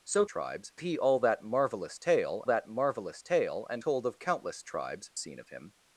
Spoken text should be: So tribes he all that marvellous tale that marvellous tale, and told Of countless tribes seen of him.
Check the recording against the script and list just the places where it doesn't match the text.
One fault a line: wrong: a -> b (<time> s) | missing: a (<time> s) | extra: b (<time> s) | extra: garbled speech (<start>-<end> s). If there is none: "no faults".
no faults